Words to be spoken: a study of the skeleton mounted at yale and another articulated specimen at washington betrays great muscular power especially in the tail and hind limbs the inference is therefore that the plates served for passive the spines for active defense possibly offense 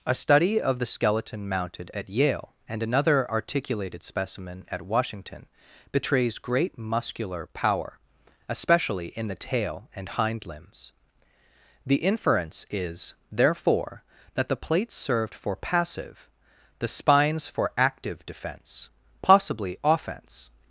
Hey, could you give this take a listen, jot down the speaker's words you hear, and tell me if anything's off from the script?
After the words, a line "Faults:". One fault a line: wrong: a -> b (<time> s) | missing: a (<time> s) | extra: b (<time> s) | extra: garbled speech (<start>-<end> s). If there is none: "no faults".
a study of the skeleton mounted at yale and another articulated specimen at washington betrays great muscular power especially in the tail and hind limbs the inference is therefore that the plates served for passive the spines for active defense possibly offense
Faults:
no faults